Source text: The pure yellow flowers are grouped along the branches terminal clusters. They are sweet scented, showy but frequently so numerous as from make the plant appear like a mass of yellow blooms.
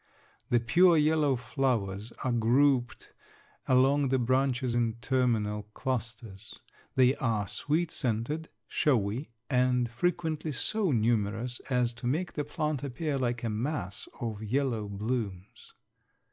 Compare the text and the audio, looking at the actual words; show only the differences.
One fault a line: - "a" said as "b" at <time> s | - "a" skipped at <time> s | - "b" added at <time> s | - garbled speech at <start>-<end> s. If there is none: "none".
- "in" added at 4.7 s
- "but" said as "and" at 9.5 s
- "from" said as "to" at 11.9 s